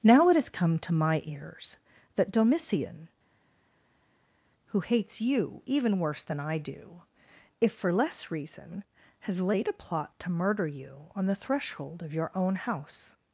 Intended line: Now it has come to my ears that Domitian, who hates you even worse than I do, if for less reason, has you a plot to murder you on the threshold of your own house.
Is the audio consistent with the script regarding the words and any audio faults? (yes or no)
no